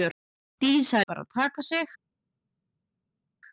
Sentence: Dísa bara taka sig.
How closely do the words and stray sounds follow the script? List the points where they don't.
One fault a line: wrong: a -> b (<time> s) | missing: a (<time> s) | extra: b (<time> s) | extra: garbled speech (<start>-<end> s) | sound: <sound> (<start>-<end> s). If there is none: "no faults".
no faults